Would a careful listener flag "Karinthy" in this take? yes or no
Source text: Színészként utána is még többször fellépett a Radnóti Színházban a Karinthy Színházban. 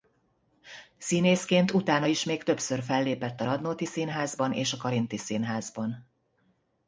no